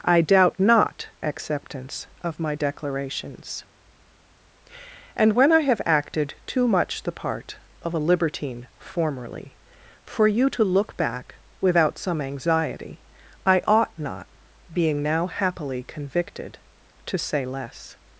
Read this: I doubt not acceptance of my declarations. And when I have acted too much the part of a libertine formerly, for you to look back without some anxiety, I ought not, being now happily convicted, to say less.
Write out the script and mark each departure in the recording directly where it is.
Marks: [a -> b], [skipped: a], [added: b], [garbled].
I doubt not acceptance of my declarations. And when I have acted too much the part of a libertine formerly, for you to look back without some anxiety, I ought not, being now happily convicted, to say less.